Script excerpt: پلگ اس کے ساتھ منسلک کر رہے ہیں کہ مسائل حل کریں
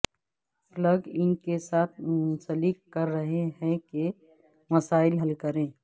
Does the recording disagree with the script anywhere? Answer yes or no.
yes